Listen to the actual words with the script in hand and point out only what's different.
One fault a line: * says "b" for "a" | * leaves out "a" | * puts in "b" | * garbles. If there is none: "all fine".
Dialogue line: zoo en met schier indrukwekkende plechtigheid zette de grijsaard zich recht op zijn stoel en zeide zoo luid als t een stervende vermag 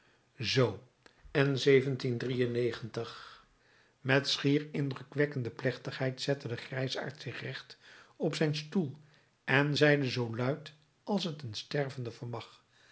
all fine